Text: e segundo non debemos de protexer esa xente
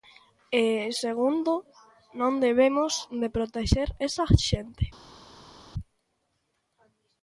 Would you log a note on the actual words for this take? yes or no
no